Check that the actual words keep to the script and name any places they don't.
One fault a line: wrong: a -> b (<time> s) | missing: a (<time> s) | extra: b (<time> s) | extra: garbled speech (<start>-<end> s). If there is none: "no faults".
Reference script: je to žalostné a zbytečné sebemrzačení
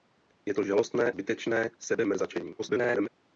missing: a (1.1 s)
extra: garbled speech (2.6-3.1 s)